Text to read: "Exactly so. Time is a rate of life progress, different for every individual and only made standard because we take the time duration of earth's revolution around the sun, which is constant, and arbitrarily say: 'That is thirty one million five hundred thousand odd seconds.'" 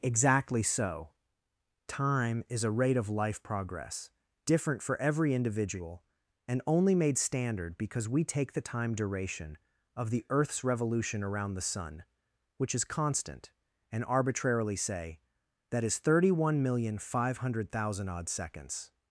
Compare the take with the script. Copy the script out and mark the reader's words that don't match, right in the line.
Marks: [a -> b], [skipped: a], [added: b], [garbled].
"Exactly so. Time is a rate of life progress, different for every individual and only made standard because we take the time duration of [added: the] earth's revolution around the sun, which is constant, and arbitrarily say: 'That is thirty one million five hundred thousand odd seconds.'"